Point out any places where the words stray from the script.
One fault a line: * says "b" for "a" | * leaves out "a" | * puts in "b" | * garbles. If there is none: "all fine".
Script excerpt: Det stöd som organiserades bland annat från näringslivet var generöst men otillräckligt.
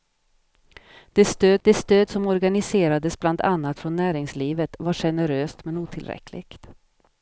* puts in "det stöd"